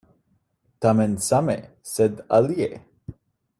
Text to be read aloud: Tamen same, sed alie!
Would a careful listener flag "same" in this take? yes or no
no